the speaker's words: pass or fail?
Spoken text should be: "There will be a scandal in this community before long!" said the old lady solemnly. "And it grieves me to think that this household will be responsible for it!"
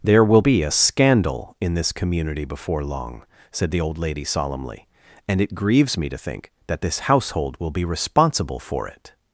pass